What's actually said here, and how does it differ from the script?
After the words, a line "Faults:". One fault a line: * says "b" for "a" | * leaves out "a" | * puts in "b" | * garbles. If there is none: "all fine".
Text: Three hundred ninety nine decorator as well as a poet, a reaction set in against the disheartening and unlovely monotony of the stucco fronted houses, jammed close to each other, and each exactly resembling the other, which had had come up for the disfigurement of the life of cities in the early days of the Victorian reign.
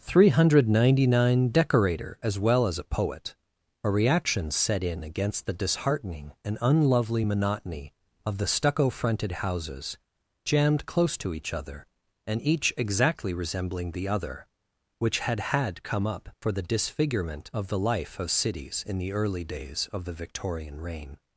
Three hundred ninety nine decorator as well as a poet, a reaction set in against the disheartening and unlovely monotony of the stucco fronted houses, jammed close to each other, and each exactly resembling the other, which had had come up for the disfigurement of the life of cities in the early days of the Victorian reign.
Faults:
all fine